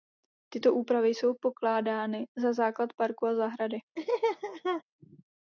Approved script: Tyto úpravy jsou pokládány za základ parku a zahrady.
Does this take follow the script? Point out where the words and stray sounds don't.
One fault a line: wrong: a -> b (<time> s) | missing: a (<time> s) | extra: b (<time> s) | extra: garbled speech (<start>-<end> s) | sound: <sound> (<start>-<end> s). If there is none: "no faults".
sound: laugh (4.0-4.8 s)